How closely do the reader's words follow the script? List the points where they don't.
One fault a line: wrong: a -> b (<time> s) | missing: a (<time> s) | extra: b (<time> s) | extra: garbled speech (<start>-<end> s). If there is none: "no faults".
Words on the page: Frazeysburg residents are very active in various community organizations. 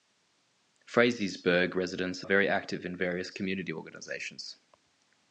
missing: are (2.2 s)